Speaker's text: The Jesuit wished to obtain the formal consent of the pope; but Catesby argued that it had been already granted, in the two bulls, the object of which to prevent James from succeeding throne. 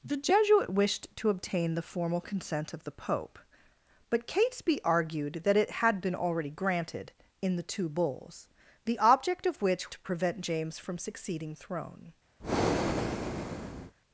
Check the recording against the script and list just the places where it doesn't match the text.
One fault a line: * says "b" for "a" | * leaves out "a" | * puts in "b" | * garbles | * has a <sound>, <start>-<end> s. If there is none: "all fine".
* has a breath, 12.4-13.9 s